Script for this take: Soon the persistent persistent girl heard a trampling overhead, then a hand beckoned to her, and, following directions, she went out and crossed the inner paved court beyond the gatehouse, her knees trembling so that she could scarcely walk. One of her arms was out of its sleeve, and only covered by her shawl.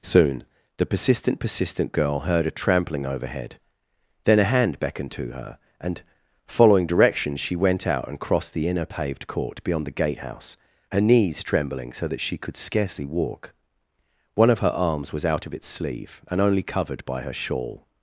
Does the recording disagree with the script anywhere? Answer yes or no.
no